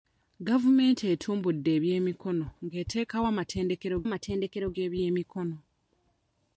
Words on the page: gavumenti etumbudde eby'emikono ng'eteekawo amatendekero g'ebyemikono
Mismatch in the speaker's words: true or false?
true